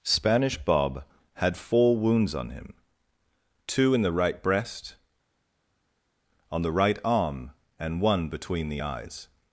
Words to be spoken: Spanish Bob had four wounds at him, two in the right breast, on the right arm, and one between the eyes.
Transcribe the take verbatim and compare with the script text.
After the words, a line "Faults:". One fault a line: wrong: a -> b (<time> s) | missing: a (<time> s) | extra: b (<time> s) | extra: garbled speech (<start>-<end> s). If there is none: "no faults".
Spanish Bob had four wounds on him, two in the right breast, on the right arm, and one between the eyes.
Faults:
wrong: at -> on (2.3 s)